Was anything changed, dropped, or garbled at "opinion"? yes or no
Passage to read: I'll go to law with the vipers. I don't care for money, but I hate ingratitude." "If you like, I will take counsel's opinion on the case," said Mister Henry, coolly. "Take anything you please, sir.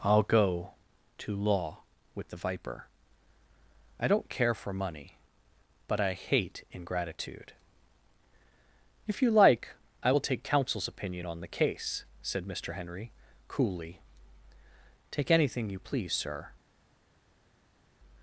no